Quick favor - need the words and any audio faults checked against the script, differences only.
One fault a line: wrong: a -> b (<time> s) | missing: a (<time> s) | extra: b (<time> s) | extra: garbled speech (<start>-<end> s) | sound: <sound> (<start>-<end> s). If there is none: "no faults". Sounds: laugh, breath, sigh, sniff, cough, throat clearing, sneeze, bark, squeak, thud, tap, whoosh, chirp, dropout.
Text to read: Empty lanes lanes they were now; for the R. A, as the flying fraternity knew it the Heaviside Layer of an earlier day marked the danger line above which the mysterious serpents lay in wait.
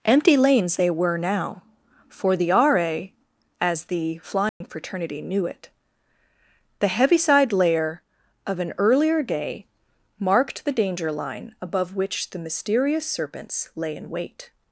missing: lanes (0.8 s)
sound: dropout (4.5-4.6 s)